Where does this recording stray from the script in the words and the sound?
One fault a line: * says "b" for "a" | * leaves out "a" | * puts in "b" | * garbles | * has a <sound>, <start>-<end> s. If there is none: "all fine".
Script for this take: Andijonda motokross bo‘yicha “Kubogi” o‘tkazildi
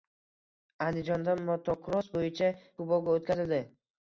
all fine